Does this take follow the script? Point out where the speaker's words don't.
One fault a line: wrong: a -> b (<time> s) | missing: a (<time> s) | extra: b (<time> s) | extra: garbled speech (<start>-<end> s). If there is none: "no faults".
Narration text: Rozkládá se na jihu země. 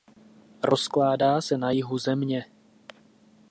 no faults